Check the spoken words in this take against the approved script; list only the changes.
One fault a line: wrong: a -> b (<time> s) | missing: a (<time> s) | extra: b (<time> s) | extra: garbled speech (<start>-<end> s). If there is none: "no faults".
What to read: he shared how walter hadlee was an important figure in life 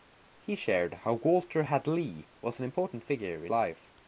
no faults